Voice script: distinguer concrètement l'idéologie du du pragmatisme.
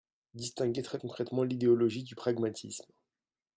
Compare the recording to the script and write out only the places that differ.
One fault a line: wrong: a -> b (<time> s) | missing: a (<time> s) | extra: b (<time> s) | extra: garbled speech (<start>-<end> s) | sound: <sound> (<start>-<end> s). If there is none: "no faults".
extra: très (0.8 s)
missing: du (2.1 s)